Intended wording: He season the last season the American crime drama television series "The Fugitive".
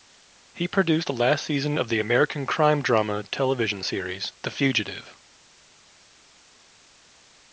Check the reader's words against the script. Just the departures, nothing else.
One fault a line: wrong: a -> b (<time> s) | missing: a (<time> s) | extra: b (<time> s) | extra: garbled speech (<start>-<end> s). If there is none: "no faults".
wrong: season -> produced (0.7 s)
extra: of (1.7 s)